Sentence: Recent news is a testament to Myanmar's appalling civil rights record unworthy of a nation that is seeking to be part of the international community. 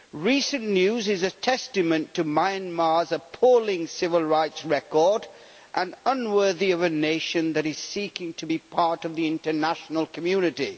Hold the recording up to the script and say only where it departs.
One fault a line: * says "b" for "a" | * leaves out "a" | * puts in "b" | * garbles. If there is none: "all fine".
* puts in "and"